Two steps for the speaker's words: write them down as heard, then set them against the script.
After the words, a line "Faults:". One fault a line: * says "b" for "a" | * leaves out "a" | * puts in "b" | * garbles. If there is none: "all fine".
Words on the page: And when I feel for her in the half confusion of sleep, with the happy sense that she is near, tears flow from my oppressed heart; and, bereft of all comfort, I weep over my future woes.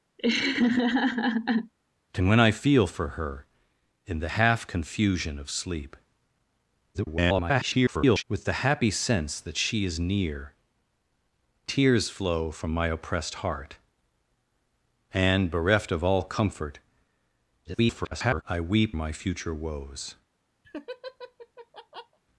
And when I feel for her in the half confusion of sleep, [garbled] with the happy sense that she is near, tears flow from my oppressed heart; and, bereft of all comfort, [garbled] I weep my future woes.
Faults:
* garbles
* garbles
* leaves out "over"